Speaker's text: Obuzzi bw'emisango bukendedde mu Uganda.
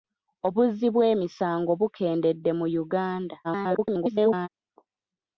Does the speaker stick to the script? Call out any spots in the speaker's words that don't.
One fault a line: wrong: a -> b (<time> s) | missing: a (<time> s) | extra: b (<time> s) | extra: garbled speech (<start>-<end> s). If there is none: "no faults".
extra: garbled speech (3.4-4.5 s)